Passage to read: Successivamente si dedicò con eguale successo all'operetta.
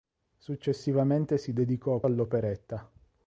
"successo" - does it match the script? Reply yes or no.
no